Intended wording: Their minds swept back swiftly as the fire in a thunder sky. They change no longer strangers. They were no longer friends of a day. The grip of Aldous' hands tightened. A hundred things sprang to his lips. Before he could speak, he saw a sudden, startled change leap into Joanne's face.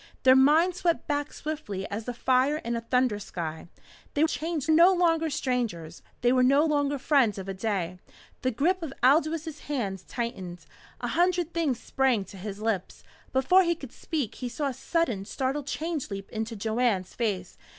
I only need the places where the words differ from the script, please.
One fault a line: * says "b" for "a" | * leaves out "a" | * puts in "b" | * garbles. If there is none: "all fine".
all fine